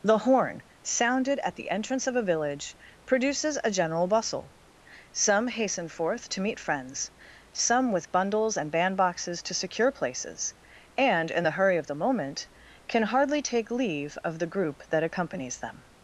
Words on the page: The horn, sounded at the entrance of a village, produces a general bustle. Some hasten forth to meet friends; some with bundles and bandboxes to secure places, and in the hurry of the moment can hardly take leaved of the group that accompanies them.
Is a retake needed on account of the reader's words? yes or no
yes